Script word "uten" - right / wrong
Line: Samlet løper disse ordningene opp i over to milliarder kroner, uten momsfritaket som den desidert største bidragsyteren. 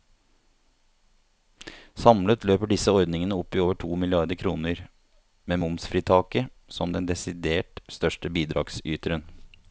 wrong